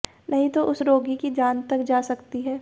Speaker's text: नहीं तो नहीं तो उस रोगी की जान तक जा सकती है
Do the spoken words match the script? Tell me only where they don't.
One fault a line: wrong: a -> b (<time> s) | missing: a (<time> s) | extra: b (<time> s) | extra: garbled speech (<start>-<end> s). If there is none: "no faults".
missing: नहीं तो (0.6 s)